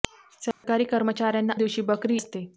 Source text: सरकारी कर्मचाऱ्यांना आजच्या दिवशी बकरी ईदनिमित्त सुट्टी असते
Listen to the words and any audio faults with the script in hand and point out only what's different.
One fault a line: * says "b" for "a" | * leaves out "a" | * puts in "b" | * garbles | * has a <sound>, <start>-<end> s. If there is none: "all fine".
* has a dropout, 0.5-0.6 s
* leaves out "आजच्या"
* leaves out "ईदनिमित्त सुट्टी"